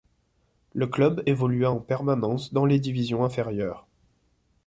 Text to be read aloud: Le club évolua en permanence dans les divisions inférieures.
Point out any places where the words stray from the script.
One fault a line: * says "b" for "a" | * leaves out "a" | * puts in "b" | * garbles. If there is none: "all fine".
all fine